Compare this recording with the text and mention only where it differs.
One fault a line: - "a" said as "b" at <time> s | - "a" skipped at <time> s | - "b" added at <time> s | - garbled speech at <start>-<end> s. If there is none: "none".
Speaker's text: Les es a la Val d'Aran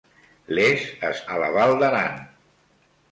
none